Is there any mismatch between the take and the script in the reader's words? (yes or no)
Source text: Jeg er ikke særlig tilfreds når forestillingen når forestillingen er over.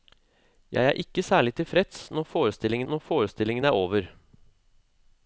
no